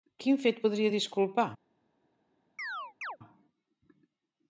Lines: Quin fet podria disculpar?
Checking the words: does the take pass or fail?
pass